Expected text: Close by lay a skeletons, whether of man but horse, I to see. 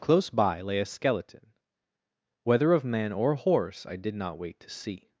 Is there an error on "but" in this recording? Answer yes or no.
yes